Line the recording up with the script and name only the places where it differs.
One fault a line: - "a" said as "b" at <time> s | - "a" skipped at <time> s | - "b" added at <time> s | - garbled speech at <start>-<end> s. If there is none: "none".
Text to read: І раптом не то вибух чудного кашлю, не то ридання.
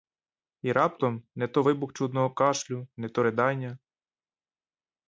none